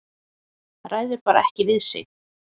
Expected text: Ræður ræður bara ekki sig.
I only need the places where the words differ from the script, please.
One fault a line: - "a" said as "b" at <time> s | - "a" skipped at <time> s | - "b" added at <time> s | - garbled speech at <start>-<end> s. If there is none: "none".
- "ræður" skipped at 1.2 s
- "við" added at 1.7 s